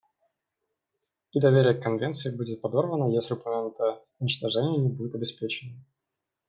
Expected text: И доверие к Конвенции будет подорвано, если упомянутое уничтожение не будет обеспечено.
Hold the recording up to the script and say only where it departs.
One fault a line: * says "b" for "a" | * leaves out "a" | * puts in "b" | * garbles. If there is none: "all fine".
all fine